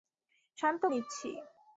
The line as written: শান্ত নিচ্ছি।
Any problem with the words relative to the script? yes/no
no